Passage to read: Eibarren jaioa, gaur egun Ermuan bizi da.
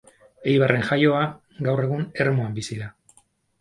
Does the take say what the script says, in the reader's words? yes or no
yes